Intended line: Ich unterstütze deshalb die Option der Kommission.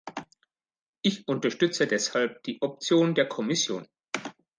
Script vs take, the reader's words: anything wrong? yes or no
no